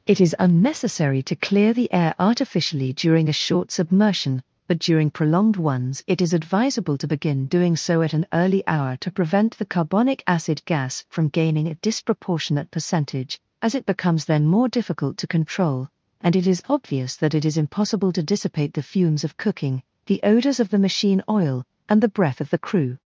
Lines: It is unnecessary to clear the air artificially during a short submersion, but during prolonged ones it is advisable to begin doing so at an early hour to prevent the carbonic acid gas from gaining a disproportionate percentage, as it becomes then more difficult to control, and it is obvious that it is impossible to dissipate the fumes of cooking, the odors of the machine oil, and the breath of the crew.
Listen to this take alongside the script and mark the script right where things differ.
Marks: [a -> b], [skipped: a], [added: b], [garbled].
It is unnecessary to clear the air artificially during a short submersion, but during prolonged ones it is advisable to begin doing so at an early hour to prevent the carbonic acid gas from gaining a disproportionate percentage, as it becomes then more difficult to control, and it is obvious that it is impossible to dissipate the fumes of cooking, the odors of the machine oil, and the breath of the crew.